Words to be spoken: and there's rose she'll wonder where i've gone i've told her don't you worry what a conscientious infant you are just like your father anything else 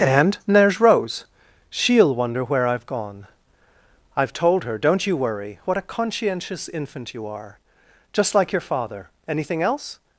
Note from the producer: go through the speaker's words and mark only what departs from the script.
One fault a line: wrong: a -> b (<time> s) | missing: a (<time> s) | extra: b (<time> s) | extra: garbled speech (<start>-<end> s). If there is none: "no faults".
no faults